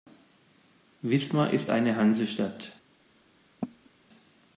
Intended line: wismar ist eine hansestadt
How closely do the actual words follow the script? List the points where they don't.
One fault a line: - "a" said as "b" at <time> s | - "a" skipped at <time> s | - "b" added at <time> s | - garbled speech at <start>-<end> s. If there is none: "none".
none